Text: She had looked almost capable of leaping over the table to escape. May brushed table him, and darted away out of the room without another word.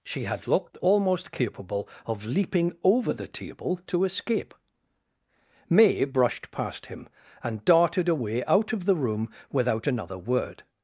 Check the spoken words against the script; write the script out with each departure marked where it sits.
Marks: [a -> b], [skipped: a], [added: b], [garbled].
She had looked almost capable of leaping over the table to escape. May brushed [table -> past] him, and darted away out of the room without another word.